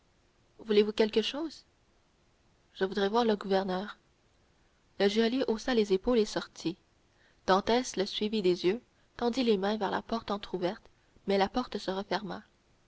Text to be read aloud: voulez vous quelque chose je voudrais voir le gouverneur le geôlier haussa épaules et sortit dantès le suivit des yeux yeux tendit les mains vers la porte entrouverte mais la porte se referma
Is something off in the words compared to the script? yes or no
yes